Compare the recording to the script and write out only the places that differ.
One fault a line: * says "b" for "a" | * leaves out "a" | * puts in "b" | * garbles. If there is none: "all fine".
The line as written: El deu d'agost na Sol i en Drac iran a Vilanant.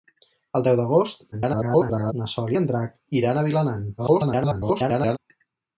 * garbles
* garbles